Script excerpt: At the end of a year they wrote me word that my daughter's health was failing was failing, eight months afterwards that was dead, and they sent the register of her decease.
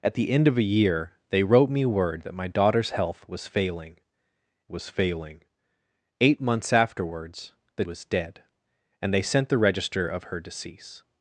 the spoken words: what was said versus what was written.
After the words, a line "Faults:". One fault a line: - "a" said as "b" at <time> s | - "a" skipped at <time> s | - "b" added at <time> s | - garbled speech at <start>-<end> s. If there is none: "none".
At the end of a year they wrote me word that my daughter's health was failing was failing, eight months afterwards that was dead, and they sent the register of her decease.
Faults:
none